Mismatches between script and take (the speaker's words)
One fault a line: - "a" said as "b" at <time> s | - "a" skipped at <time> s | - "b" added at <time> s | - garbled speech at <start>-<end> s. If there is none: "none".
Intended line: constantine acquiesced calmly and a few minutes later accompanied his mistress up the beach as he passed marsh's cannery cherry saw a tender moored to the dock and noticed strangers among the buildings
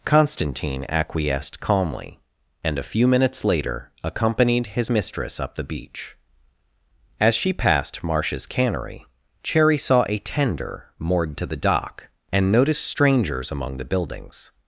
- "he" said as "she" at 7.3 s